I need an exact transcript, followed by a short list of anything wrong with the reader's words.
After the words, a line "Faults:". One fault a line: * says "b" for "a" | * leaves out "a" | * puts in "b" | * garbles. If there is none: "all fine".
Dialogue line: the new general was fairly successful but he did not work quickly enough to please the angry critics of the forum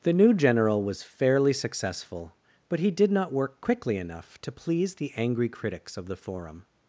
the new general was fairly successful but he did not work quickly enough to please the angry critics of the forum
Faults:
all fine